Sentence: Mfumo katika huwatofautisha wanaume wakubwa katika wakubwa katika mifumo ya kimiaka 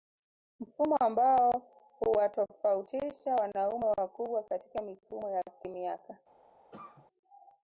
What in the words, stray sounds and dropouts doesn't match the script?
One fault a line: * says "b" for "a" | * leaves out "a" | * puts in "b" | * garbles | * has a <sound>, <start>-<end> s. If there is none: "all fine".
* says "ambao" for "katika"
* leaves out "wakubwa katika"
* has a cough, 6.7-7.1 s